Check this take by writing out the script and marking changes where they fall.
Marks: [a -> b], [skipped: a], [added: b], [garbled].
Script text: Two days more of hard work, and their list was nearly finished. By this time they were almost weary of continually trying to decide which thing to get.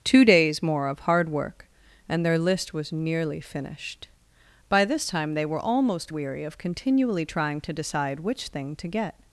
Two days more of hard work, and their list was nearly finished. By this time they were almost weary of continually trying to decide which thing to get.